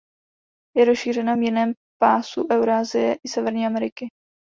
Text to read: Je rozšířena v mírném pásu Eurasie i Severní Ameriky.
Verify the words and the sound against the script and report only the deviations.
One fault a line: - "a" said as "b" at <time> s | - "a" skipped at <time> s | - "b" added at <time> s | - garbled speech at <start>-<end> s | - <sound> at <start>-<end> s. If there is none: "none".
none